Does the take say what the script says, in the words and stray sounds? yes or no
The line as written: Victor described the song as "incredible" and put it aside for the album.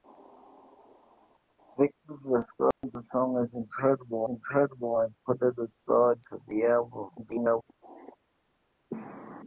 no